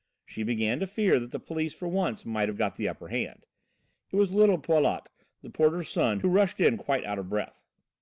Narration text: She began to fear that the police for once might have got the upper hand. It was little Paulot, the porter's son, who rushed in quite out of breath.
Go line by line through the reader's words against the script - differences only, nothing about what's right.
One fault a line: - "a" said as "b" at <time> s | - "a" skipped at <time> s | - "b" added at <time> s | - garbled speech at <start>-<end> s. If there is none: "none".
none